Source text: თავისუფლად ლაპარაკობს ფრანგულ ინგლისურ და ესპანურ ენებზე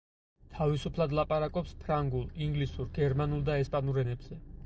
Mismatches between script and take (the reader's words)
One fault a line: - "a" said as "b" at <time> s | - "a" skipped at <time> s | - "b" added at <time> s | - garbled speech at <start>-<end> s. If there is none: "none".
- "გერმანულ" added at 3.0 s